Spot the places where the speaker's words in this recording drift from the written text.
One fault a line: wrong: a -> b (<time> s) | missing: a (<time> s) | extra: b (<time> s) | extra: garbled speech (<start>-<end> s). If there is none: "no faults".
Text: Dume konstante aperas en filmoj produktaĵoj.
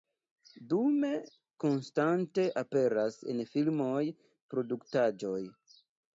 no faults